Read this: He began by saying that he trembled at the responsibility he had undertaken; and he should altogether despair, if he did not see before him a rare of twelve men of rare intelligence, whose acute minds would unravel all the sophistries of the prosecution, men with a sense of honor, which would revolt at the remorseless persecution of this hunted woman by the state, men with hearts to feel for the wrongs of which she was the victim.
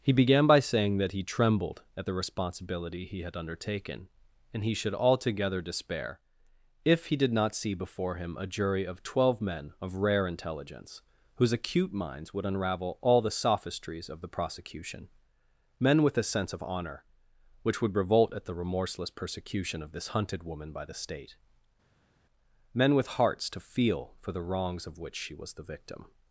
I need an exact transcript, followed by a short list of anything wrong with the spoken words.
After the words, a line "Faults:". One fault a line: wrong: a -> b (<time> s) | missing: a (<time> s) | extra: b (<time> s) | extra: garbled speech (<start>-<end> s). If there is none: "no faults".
He began by saying that he trembled at the responsibility he had undertaken; and he should altogether despair, if he did not see before him a jury of twelve men of rare intelligence, whose acute minds would unravel all the sophistries of the prosecution, men with a sense of honor, which would revolt at the remorseless persecution of this hunted woman by the state, men with hearts to feel for the wrongs of which she was the victim.
Faults:
wrong: rare -> jury (8.5 s)